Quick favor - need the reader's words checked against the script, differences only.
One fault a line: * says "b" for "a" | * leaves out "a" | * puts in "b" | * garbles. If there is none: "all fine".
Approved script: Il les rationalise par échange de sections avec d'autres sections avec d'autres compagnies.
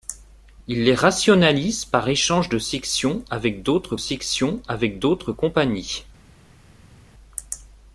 all fine